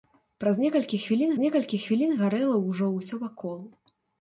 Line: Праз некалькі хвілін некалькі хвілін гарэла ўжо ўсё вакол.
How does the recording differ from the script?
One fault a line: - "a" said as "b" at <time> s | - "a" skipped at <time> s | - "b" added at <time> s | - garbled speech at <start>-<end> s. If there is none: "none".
none